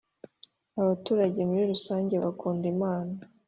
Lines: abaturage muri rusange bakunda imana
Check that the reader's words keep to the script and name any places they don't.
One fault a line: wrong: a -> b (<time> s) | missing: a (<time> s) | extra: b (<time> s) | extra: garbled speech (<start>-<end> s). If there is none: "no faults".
no faults